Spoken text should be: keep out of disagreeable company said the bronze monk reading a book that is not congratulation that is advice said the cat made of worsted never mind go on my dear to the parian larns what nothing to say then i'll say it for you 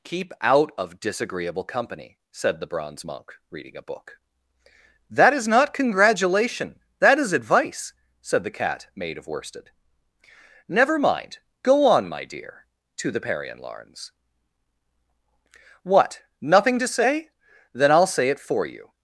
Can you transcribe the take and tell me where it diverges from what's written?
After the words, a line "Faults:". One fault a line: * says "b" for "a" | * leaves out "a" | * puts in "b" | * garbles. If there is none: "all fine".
keep out of disagreeable company said the bronze monk reading a book that is not congratulation that is advice said the cat made of worsted never mind go on my dear to the parian larns what nothing to say then i'll say it for you
Faults:
all fine